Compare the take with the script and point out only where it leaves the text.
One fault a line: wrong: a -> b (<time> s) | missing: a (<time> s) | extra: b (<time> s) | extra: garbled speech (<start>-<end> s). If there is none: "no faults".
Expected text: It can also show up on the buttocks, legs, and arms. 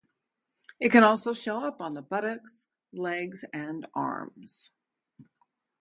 no faults